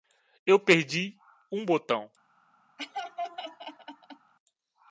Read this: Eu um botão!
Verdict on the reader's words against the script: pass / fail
fail